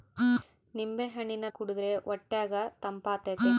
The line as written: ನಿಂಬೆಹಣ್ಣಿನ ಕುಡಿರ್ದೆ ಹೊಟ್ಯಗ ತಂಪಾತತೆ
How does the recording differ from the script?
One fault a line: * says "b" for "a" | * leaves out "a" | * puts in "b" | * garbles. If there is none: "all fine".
all fine